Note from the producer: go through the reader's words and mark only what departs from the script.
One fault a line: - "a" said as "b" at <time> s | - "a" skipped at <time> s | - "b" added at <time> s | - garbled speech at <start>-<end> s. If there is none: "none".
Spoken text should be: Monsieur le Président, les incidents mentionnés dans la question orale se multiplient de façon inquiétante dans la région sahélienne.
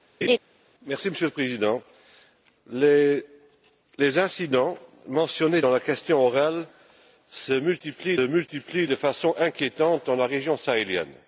- "multiplient" added at 8.2 s